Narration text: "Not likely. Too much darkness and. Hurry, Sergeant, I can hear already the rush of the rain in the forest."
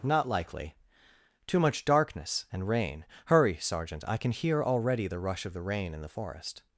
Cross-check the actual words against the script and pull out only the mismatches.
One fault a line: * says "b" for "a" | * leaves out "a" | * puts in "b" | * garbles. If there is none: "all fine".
* puts in "rain"